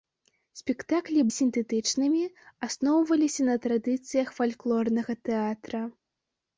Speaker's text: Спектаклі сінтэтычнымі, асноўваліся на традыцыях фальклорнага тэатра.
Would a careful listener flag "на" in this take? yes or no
no